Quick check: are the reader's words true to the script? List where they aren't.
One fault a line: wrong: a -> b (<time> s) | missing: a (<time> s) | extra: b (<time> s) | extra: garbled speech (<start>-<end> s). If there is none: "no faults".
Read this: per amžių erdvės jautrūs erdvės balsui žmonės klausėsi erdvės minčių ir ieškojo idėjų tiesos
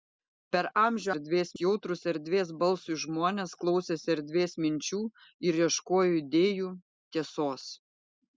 no faults